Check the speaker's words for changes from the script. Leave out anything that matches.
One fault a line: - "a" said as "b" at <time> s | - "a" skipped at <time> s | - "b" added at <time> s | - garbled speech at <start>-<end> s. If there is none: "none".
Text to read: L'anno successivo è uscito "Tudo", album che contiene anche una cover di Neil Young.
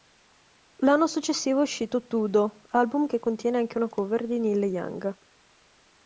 none